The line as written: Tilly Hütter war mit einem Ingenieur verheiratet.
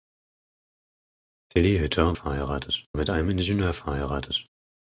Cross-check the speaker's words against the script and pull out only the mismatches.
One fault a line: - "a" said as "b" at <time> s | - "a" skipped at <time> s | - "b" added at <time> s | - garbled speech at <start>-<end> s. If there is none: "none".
- "war" said as "verheiratet" at 2.1 s